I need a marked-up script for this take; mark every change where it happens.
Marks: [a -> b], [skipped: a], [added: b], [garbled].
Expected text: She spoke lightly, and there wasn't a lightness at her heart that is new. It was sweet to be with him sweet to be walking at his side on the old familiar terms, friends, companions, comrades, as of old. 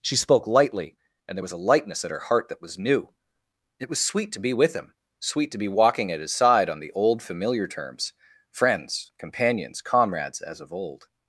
She spoke lightly, and there [wasn't -> was] a lightness at her heart that [is -> was] new. It was sweet to be with him sweet to be walking at his side on the old familiar terms, friends, companions, comrades, as of old.